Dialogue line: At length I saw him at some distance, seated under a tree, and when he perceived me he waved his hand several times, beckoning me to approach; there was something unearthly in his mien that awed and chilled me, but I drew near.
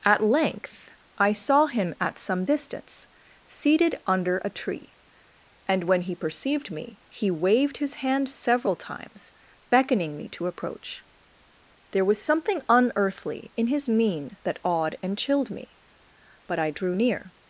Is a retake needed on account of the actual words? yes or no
no